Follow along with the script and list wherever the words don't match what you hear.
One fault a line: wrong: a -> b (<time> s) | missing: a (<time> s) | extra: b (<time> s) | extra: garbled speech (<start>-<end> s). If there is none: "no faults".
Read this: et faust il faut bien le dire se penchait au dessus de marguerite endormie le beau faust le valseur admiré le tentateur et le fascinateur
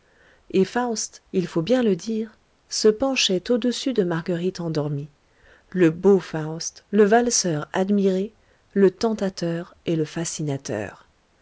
no faults